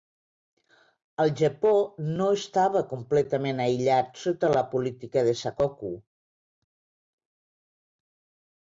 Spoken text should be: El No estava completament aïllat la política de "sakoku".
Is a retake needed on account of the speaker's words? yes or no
yes